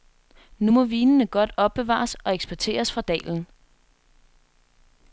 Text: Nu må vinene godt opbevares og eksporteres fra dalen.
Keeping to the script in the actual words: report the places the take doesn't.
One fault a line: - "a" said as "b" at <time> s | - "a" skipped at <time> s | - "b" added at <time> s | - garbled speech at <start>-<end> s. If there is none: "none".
none